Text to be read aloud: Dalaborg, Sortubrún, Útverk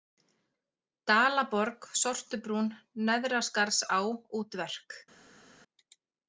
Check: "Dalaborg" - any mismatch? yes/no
no